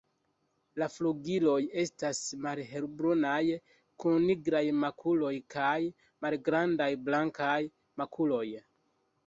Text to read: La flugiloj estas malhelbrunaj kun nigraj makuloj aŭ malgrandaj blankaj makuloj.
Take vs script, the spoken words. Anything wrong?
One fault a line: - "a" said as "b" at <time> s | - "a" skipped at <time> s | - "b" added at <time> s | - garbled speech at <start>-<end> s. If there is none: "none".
- "aŭ" said as "kaj" at 5.6 s